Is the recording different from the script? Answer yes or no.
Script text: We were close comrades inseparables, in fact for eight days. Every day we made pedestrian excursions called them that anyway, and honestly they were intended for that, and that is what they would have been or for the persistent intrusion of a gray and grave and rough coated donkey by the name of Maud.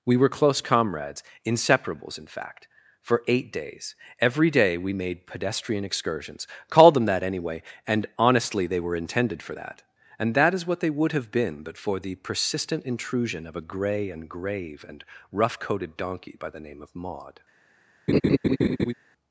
yes